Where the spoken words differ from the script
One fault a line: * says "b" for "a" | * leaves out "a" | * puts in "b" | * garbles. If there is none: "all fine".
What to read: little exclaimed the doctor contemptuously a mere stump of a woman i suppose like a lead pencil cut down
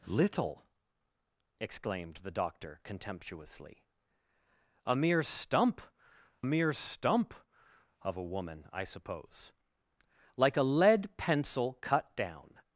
* puts in "mere stump"